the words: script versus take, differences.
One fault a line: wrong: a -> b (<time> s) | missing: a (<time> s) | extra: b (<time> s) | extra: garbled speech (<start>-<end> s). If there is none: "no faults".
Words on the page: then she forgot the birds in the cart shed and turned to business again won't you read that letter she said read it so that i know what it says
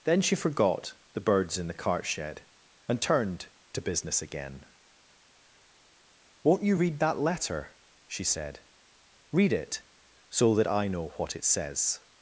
no faults